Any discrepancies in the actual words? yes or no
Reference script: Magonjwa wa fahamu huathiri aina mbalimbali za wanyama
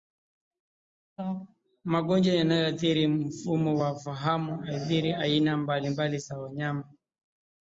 yes